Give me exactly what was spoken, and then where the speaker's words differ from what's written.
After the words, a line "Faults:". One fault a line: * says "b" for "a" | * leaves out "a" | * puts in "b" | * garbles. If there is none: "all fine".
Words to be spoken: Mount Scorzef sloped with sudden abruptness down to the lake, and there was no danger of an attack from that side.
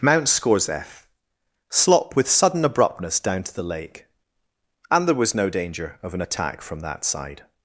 Mount Scorzef slop with sudden abruptness down to the lake, and there was no danger of an attack from that side.
Faults:
* says "slop" for "sloped"